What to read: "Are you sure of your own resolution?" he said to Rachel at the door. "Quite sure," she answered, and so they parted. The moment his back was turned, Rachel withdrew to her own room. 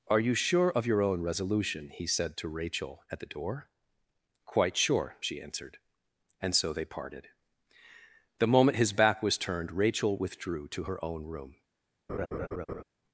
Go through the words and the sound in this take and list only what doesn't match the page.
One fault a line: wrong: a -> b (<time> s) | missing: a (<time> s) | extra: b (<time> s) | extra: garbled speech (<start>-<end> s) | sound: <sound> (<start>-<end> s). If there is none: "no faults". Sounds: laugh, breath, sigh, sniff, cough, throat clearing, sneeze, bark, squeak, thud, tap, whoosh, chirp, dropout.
sound: laugh (12.1-12.8 s)